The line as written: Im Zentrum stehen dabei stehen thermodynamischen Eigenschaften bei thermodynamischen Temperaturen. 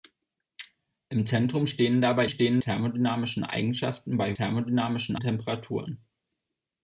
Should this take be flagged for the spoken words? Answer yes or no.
no